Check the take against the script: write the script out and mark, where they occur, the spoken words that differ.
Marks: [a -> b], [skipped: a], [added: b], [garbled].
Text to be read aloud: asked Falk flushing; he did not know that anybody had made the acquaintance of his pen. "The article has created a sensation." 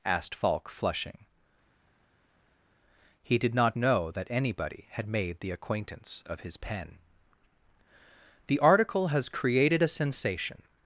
asked Falk flushing; he did not know that anybody had made the acquaintance of his pen. "The article has created a sensation."